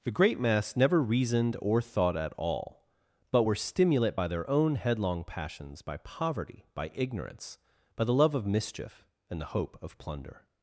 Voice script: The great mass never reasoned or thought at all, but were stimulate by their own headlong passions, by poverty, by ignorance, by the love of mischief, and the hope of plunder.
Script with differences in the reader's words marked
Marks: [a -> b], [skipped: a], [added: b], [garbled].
The great mass never reasoned or thought at all, but were stimulate by their own headlong passions, by poverty, by ignorance, by the love of mischief, and the hope of plunder.